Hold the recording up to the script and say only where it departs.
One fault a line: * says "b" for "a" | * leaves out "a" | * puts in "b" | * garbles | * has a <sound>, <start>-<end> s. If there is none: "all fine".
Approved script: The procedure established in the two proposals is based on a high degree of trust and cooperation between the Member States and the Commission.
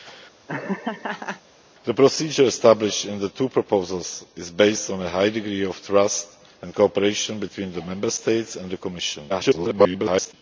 * has a laugh, 0.5-1.4 s
* garbles